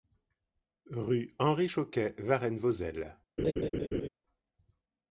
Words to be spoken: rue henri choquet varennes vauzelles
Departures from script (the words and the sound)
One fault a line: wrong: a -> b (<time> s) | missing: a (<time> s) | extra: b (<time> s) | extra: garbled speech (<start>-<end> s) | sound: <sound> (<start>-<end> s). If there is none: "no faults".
sound: laugh (3.4-4.1 s)